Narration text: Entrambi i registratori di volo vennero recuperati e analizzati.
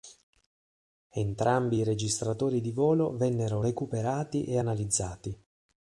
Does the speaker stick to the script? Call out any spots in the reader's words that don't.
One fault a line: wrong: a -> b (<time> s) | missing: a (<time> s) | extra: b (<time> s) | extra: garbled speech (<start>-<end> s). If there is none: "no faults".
no faults